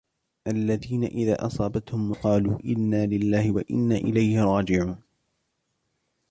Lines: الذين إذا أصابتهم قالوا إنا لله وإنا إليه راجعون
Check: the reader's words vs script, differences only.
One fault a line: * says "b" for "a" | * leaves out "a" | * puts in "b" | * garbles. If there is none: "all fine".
all fine